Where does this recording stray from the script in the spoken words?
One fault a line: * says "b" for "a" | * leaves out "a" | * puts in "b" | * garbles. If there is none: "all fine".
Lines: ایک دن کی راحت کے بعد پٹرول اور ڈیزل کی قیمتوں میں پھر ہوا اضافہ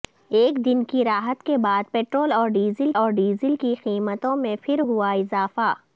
* puts in "اور ڈیزل"